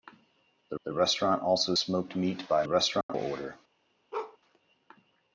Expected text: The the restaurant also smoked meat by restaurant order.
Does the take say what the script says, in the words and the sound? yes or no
no